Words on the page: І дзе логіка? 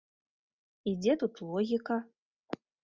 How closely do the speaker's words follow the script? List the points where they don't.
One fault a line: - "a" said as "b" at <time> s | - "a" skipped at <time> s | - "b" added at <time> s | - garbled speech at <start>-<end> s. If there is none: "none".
- "тут" added at 1.2 s